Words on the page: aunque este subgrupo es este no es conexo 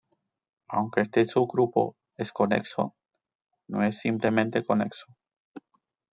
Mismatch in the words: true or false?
true